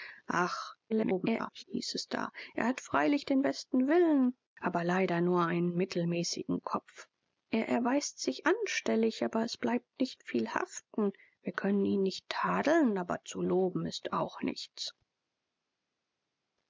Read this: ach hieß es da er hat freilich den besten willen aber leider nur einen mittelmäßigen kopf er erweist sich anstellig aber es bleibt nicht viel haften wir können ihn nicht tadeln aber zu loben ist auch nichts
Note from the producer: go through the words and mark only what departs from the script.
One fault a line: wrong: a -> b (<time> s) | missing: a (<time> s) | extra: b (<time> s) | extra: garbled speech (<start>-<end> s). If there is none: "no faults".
extra: garbled speech (0.9-1.6 s)